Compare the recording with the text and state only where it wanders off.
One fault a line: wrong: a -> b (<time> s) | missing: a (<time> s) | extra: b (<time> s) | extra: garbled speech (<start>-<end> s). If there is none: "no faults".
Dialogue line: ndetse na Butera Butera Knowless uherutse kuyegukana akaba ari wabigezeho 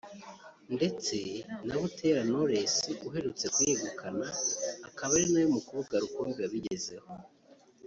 missing: Butera (2.2 s)
extra: nawe mukobwa rukumbi (5.3 s)